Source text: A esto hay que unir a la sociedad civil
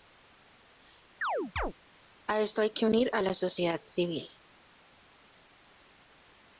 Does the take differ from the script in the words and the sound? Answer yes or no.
yes